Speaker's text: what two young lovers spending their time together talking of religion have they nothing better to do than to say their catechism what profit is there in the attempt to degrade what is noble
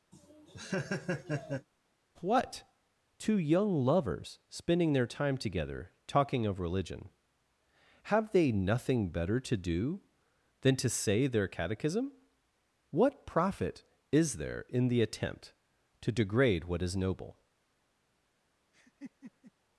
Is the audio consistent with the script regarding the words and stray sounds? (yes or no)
no